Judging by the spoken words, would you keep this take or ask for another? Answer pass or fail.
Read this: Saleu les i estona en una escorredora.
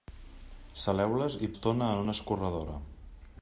pass